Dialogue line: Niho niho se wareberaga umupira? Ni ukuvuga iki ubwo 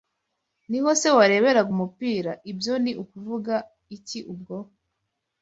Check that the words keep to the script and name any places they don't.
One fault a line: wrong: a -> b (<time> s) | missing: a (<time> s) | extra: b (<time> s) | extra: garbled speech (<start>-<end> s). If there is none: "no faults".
missing: niho (0.9 s)
extra: Ibyo (2.5 s)